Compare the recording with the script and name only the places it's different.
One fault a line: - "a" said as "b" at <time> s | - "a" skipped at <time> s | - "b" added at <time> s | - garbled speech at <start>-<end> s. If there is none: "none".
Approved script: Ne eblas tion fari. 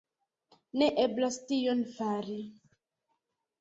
none